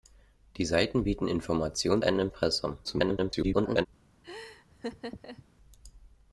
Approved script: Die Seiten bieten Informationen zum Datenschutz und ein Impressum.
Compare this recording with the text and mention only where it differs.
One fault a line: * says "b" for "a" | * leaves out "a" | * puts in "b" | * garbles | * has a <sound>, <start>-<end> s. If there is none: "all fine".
* leaves out "zum Datenschutz und"
* garbles
* has a laugh, 4.2-5.5 s